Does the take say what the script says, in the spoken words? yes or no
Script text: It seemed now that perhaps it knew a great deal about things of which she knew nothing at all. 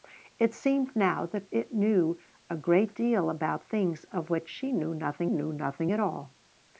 no